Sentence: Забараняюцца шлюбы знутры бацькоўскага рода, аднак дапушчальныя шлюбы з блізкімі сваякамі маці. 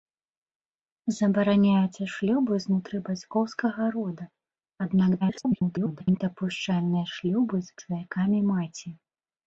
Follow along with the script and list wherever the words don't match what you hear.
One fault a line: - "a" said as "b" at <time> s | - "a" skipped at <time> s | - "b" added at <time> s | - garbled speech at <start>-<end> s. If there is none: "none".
- garbled speech at 5.2-6.2 s
- "блізкімі" skipped at 7.8 s